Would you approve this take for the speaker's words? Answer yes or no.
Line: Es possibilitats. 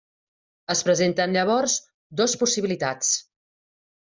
no